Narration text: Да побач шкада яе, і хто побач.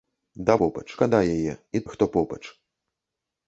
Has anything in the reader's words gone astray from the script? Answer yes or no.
no